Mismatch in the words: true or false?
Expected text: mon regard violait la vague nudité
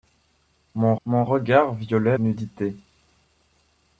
true